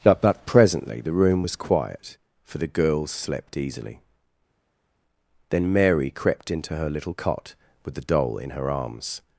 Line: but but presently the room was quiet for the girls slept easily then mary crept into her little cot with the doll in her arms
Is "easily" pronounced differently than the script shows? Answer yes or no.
no